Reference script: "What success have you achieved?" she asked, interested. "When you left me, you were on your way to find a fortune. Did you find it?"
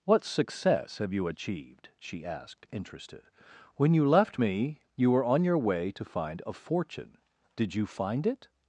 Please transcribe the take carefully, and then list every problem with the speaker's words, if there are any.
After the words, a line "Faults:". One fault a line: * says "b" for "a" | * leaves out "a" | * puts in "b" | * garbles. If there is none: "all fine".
"What success have you achieved?" she asked, interested. "When you left me, you were on your way to find a fortune. Did you find it?"
Faults:
all fine